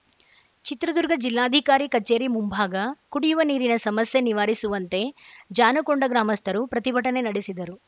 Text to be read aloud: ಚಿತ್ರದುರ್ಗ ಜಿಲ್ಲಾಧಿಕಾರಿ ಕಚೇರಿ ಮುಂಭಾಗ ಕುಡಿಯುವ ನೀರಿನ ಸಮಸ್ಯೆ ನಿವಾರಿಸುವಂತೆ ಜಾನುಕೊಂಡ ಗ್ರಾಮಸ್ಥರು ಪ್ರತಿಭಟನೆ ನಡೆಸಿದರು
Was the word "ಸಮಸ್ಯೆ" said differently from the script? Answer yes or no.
no